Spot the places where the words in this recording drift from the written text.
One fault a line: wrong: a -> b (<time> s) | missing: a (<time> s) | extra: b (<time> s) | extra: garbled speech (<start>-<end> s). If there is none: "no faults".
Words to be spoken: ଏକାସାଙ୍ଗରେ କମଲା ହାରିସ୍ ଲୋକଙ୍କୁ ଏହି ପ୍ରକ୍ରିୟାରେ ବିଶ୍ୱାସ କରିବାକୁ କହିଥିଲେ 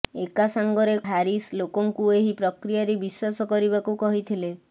missing: କମଲା (0.9 s)